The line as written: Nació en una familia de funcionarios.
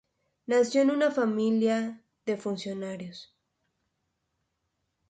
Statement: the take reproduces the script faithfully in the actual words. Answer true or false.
true